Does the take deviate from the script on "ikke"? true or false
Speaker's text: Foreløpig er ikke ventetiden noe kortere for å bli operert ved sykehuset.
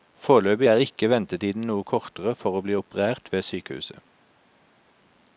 false